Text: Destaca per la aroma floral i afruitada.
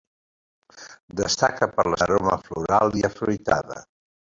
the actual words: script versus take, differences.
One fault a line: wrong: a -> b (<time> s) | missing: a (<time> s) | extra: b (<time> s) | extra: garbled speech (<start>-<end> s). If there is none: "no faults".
no faults